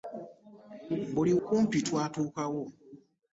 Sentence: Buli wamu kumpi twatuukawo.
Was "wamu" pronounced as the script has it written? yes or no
no